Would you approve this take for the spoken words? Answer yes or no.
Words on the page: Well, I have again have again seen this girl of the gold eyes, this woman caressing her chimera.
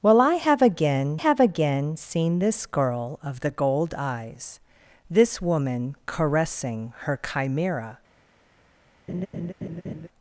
yes